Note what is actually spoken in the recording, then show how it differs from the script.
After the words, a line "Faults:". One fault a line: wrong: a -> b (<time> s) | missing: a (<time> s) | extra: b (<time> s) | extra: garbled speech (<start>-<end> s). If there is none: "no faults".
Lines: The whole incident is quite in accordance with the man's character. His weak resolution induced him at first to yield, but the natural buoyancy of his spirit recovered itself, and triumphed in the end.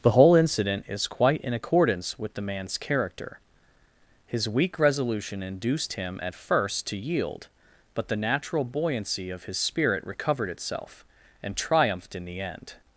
The whole incident is quite in accordance with the man's character. His weak resolution induced him at first to yield, but the natural buoyancy of his spirit recovered itself, and triumphed in the end.
Faults:
no faults